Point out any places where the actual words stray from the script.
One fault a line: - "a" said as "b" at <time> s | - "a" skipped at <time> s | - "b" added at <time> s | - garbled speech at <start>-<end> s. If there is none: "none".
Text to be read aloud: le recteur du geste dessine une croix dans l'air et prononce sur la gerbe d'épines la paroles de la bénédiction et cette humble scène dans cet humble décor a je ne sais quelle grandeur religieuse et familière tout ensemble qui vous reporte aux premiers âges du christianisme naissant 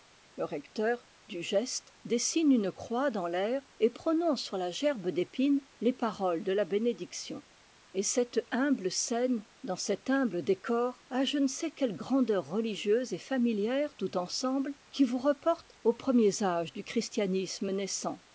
- "la" said as "les" at 5.8 s